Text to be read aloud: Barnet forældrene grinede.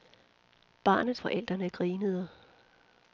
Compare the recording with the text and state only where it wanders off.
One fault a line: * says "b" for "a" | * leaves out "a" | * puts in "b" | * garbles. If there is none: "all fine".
all fine